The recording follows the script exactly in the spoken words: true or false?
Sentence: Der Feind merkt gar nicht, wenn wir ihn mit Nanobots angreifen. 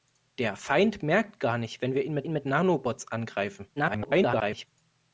false